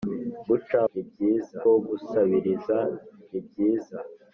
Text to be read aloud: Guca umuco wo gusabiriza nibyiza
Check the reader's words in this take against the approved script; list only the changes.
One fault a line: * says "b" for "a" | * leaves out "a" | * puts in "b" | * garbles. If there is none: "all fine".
* says "nibyiza" for "umuco"